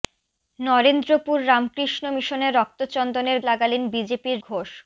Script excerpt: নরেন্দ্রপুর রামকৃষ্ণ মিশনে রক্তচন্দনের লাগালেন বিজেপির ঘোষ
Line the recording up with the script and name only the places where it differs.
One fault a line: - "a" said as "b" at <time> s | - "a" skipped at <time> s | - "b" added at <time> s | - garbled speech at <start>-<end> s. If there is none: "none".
none